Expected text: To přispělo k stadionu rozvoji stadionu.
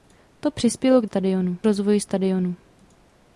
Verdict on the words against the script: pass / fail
pass